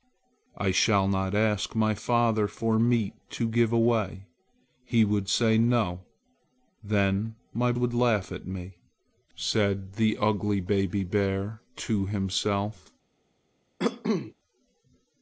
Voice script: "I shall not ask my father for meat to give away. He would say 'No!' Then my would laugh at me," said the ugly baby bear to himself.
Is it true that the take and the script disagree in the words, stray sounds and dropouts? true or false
true